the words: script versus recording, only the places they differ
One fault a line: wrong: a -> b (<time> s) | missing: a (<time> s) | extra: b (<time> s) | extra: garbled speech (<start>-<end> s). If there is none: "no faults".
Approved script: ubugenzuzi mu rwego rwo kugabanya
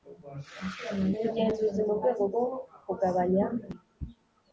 no faults